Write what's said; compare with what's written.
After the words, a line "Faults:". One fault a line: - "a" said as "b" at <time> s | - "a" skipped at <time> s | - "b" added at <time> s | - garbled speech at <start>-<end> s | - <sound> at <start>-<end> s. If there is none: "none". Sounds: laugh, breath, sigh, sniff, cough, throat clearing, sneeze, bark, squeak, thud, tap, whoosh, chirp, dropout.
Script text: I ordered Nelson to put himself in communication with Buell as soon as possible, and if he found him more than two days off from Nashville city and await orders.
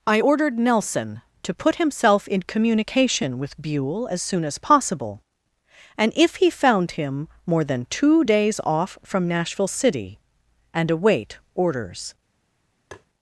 I ordered Nelson to put himself in communication with Buell as soon as possible, and if he found him more than two days off from Nashville city and await orders.
Faults:
- tap at 12.9-13.1 s